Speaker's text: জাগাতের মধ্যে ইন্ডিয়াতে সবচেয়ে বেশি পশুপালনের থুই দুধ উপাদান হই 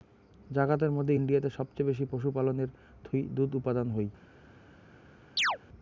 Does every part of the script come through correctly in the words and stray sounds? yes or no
no